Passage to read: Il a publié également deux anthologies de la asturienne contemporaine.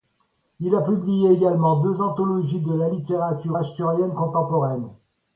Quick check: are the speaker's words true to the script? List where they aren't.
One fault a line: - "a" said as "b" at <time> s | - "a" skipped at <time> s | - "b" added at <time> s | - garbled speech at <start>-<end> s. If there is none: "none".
- "littérature" added at 2.9 s